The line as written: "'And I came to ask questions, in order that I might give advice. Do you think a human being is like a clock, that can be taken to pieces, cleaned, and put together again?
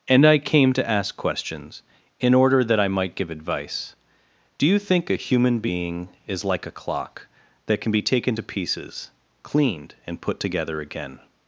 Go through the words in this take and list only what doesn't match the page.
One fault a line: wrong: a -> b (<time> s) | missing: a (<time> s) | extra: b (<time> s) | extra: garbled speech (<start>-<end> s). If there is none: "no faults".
no faults